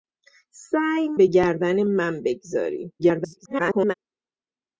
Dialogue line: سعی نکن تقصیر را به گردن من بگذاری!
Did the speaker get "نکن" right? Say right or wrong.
wrong